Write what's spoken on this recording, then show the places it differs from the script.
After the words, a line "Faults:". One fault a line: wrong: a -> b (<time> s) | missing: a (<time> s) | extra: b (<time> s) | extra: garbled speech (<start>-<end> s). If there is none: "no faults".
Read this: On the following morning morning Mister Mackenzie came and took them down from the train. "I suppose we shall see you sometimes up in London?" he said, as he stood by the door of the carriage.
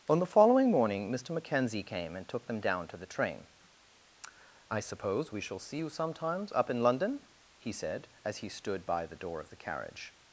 On the following morning Mister Mackenzie came and took them down to the train. "I suppose we shall see you sometimes up in London?" he said, as he stood by the door of the carriage.
Faults:
missing: morning (1.1 s)
wrong: from -> to (2.9 s)